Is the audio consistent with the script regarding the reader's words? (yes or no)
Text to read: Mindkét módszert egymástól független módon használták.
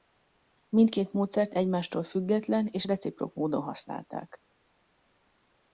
no